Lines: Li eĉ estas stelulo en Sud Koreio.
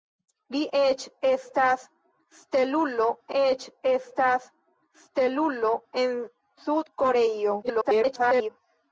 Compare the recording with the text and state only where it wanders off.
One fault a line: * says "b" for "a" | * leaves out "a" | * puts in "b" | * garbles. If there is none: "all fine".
* puts in "eĉ estas stelulo"
* garbles